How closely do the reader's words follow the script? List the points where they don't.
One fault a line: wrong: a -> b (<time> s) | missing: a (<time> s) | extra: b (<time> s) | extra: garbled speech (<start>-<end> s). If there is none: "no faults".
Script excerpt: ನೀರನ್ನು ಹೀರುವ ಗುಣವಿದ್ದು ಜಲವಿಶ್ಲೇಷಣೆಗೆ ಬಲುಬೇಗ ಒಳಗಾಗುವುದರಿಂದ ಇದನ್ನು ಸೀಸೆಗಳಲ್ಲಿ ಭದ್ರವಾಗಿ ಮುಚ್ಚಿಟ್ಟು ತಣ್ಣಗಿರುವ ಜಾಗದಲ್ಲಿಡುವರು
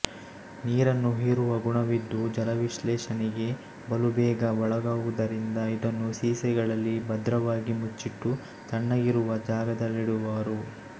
no faults